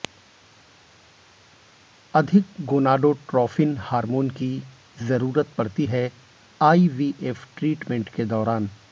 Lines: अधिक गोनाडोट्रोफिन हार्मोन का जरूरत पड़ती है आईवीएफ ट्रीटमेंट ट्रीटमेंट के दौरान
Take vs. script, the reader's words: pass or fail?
fail